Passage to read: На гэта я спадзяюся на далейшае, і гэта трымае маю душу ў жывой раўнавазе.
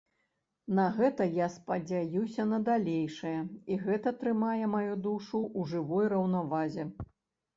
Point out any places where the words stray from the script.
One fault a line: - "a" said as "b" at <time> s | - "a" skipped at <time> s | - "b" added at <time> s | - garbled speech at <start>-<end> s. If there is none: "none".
none